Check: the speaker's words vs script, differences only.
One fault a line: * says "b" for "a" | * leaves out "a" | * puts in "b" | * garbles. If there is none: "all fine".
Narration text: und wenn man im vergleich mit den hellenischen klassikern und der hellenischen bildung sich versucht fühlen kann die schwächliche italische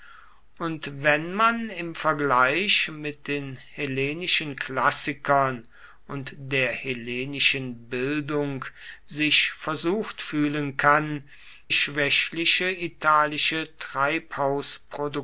* leaves out "die"